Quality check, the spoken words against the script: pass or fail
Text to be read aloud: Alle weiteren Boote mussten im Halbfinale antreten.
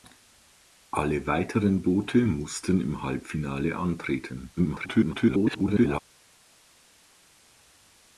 fail